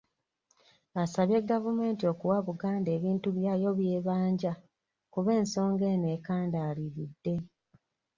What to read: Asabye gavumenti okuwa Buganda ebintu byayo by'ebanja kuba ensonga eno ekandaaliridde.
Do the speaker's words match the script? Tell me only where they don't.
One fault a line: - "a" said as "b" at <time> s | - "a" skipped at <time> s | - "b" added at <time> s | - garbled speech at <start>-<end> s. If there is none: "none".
none